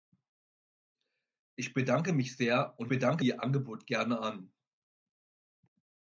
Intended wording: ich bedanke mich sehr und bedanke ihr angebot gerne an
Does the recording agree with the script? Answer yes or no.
yes